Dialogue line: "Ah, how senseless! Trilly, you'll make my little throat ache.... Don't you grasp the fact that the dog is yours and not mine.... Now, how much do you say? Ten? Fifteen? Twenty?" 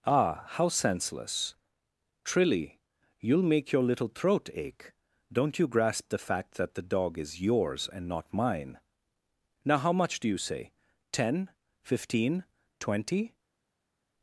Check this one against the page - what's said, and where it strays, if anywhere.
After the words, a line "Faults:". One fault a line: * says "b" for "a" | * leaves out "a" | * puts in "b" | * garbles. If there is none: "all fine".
"Ah, how senseless! Trilly, you'll make your little throat ache.... Don't you grasp the fact that the dog is yours and not mine.... Now, how much do you say? Ten? Fifteen? Twenty?"
Faults:
* says "your" for "my"